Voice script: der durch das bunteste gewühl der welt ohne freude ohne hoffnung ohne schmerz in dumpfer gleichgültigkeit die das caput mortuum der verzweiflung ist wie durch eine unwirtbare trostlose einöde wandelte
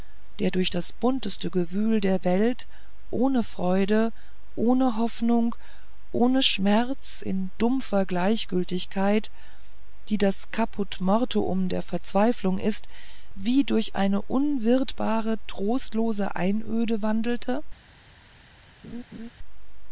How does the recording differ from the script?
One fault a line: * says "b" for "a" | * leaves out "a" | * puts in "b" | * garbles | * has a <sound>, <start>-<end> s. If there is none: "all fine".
* has a laugh, 18.8-19.3 s